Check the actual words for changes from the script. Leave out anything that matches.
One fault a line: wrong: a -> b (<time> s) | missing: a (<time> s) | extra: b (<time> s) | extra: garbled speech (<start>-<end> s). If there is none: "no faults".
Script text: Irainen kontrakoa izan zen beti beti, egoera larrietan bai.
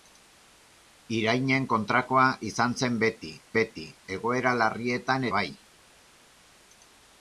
no faults